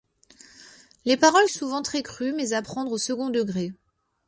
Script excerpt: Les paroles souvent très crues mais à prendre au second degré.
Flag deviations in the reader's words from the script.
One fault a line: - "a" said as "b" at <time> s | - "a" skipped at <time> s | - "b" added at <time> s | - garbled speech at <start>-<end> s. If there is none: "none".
none